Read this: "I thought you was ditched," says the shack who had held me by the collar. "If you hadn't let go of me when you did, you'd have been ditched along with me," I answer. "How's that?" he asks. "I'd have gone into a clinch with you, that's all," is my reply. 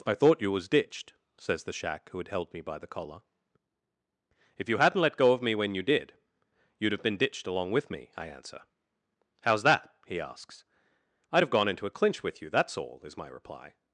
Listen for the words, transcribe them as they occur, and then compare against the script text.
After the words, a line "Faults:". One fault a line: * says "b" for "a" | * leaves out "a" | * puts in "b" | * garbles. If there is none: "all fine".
"I thought you was ditched," says the shack who had held me by the collar. "If you hadn't let go of me when you did, you'd have been ditched along with me," I answer. "How's that?" he asks. "I'd have gone into a clinch with you, that's all," is my reply.
Faults:
all fine